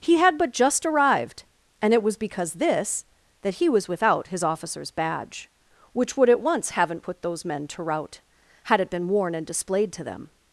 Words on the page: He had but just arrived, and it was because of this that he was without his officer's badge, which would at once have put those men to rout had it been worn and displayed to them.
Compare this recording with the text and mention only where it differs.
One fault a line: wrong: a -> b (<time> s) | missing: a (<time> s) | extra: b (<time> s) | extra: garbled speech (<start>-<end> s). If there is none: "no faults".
missing: of (2.5 s)
wrong: have -> haven't (6.7 s)